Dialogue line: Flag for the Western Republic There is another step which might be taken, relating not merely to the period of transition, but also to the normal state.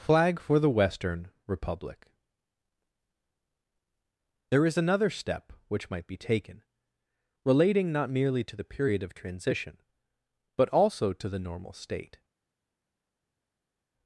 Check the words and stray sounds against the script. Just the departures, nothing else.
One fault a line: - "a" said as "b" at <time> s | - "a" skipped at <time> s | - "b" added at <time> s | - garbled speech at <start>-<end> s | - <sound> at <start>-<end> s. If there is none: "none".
none